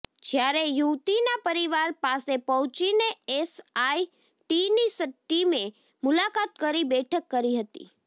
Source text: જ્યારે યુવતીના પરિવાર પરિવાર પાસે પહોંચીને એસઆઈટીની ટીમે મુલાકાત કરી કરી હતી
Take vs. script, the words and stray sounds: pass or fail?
fail